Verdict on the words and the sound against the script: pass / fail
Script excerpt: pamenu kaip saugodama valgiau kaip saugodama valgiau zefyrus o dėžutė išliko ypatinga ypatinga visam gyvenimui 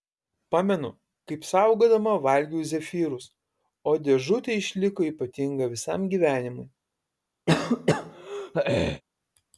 fail